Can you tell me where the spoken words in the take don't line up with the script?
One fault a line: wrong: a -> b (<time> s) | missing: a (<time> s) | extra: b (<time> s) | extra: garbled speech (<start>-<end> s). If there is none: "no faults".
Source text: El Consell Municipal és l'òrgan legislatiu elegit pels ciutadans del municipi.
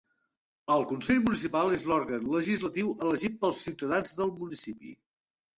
no faults